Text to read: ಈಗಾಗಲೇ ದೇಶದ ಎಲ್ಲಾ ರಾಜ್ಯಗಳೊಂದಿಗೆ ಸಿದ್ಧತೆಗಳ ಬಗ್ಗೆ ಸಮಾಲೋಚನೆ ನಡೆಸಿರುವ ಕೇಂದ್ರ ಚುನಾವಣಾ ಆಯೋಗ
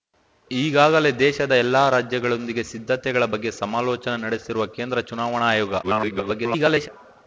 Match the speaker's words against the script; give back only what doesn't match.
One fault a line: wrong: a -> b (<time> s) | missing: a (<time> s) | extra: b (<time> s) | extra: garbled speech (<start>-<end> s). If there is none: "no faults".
extra: garbled speech (5.8-6.9 s)